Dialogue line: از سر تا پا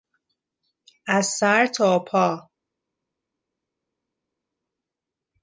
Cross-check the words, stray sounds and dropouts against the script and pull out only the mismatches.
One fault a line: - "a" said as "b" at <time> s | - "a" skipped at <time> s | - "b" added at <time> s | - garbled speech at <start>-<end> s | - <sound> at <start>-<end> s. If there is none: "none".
none